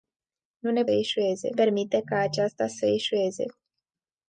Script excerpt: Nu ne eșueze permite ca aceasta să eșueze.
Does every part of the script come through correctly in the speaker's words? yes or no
yes